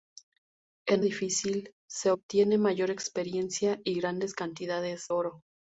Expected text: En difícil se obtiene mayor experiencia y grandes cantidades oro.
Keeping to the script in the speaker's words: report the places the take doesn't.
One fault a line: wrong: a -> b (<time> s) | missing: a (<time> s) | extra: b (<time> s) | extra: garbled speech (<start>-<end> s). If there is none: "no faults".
no faults